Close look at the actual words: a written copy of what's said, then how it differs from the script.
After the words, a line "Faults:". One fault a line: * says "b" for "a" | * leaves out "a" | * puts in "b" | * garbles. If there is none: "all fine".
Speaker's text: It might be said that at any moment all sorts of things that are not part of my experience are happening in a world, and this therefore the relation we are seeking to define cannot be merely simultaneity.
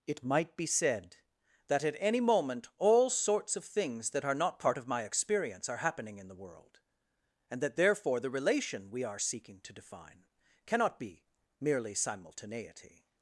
It might be said that at any moment all sorts of things that are not part of my experience are happening in the world, and that therefore the relation we are seeking to define cannot be merely simultaneity.
Faults:
* says "the" for "a"
* says "that" for "this"